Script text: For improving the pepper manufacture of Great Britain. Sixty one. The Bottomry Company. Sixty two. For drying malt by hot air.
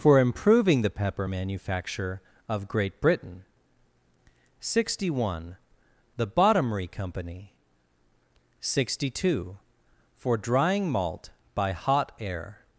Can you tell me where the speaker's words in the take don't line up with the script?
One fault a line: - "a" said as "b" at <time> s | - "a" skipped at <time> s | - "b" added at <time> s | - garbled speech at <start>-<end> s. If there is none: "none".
none